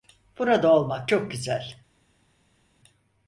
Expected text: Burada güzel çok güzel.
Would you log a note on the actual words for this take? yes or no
yes